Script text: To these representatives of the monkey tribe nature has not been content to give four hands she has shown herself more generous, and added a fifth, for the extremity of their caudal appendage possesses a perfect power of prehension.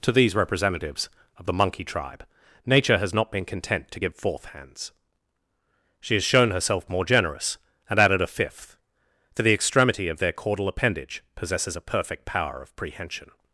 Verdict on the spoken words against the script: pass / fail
fail